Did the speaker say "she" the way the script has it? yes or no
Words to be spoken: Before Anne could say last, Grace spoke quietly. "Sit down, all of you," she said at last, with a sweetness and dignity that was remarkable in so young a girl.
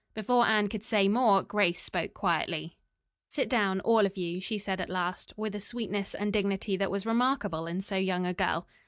yes